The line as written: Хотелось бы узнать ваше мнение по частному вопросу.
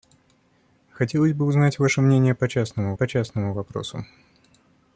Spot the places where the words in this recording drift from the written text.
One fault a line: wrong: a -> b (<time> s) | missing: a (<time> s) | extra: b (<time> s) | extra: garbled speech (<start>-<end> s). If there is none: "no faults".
extra: по частному (2.9 s)